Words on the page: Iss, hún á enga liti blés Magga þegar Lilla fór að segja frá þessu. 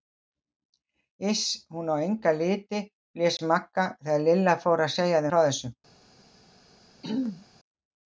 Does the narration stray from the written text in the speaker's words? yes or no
no